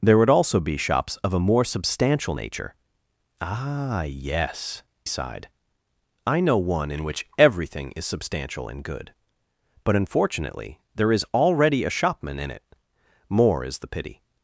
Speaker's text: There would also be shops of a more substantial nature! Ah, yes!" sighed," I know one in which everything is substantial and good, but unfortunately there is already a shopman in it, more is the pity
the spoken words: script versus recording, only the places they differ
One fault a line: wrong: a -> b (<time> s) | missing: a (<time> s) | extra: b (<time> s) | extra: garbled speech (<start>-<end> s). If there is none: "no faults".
no faults